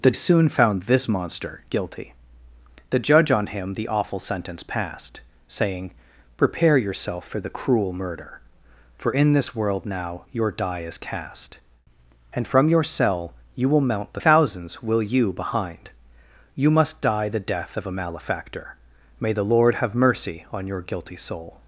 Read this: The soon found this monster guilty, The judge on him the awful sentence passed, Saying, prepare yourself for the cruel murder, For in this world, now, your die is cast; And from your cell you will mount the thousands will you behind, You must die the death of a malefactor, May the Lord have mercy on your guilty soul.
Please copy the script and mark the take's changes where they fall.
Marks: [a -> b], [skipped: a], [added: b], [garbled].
The soon found this monster guilty, The judge on him the awful sentence passed, Saying, prepare yourself for the cruel murder, For in this world, now, your die is cast; And from your cell you will mount the thousands will you behind, You must die the death of a malefactor, May the Lord have mercy on your guilty soul.